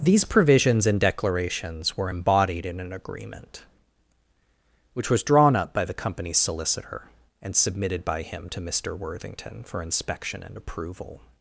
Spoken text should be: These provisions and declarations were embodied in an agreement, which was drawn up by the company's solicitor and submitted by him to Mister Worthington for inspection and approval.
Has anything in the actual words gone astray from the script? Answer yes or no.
no